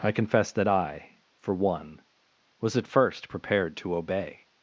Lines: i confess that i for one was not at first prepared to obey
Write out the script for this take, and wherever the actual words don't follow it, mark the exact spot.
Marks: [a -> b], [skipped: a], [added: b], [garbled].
i confess that i for one was [skipped: not] at first prepared to obey